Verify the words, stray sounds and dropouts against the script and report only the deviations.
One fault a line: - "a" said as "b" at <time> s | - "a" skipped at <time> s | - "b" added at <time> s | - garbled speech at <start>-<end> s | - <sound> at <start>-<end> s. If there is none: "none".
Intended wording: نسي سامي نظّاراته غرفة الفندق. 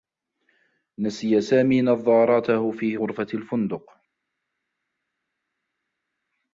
- "في" added at 2.7 s